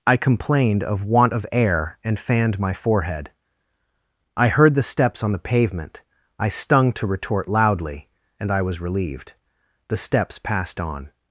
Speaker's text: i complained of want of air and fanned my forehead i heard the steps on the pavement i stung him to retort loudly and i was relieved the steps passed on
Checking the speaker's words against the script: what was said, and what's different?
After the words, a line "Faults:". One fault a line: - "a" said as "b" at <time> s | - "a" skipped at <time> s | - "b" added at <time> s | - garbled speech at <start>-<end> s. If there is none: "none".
i complained of want of air and fanned my forehead i heard the steps on the pavement i stung to retort loudly and i was relieved the steps passed on
Faults:
- "him" skipped at 6.9 s